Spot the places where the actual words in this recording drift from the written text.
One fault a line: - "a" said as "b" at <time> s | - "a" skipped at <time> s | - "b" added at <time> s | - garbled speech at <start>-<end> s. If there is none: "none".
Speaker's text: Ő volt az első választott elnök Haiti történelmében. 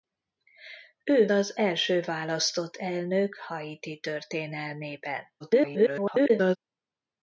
- "volt" skipped at 1.3 s
- garbled speech at 5.4-6.6 s